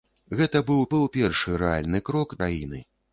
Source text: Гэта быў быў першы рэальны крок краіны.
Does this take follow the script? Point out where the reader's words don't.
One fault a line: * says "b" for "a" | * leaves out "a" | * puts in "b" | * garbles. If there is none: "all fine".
all fine